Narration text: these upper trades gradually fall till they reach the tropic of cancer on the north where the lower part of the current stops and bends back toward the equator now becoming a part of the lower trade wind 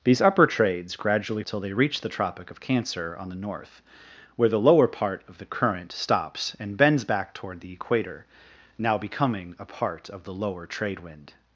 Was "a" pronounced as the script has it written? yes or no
yes